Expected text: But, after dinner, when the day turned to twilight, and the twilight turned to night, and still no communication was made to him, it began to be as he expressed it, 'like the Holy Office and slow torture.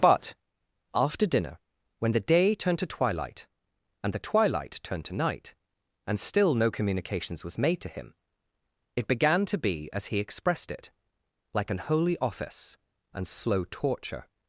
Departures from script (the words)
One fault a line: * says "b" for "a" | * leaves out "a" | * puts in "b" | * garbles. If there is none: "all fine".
* says "communications" for "communication"
* says "an" for "the"